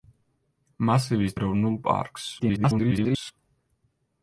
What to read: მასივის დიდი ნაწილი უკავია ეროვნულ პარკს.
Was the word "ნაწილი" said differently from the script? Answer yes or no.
yes